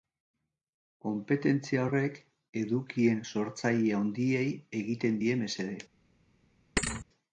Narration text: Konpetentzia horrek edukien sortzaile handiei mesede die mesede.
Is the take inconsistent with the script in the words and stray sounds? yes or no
yes